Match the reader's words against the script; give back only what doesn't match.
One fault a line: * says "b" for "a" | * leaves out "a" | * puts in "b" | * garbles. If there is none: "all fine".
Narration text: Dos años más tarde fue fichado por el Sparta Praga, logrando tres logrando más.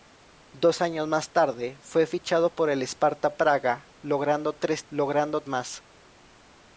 all fine